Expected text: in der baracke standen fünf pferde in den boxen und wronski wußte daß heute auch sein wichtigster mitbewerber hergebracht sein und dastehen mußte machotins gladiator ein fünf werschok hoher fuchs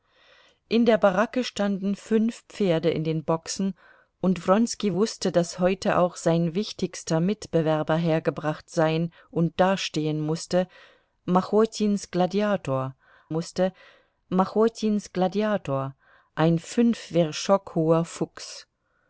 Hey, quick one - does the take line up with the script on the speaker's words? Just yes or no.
no